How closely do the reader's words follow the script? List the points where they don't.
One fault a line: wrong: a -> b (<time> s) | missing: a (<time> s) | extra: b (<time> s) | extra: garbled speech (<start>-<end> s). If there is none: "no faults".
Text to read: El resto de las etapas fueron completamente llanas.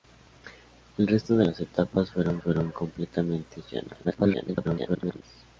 extra: fueron (2.4 s)
extra: garbled speech (4.0-5.2 s)